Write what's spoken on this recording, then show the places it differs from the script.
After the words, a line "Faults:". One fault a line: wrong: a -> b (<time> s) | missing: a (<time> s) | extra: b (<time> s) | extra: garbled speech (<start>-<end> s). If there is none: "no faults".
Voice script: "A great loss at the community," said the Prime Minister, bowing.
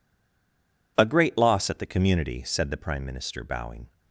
"A great loss at the community," said the Prime Minister, bowing.
Faults:
no faults